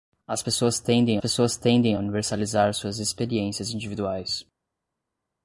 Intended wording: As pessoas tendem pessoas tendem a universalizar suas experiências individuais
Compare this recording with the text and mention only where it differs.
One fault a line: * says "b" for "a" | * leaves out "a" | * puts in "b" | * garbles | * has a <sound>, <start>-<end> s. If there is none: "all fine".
all fine